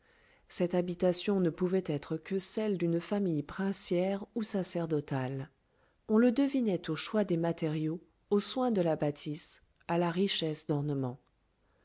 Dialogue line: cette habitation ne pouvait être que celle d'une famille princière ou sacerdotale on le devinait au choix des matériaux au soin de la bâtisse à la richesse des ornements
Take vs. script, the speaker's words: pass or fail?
fail